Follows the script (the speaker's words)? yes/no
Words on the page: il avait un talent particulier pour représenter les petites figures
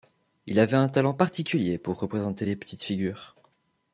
yes